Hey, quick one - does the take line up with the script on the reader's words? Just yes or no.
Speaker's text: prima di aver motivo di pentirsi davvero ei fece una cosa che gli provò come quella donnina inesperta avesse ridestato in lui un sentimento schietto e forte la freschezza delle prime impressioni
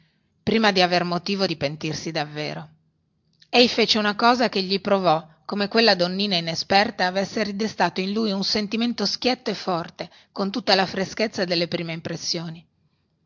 no